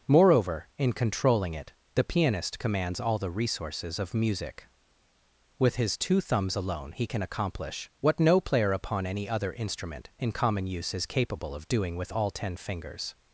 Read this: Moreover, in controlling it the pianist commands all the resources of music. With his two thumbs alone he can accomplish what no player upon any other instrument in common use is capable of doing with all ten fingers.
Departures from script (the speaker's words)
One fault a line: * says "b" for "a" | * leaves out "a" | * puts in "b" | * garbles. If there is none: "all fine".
all fine